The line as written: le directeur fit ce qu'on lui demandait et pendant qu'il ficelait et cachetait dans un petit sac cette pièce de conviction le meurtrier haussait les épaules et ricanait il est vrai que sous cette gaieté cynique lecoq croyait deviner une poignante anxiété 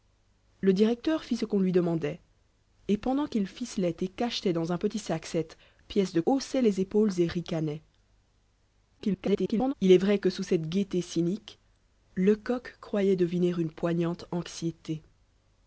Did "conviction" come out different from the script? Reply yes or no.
yes